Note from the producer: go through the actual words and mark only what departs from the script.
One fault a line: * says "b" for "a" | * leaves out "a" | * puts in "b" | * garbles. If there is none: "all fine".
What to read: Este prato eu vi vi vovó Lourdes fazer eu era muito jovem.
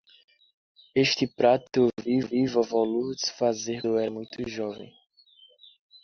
all fine